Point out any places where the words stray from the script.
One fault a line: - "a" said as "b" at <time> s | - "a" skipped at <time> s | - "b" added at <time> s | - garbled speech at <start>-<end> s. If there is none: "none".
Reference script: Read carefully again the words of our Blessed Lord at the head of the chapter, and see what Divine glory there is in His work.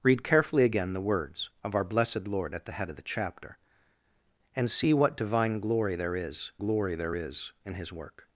- "glory there is" added at 6.6 s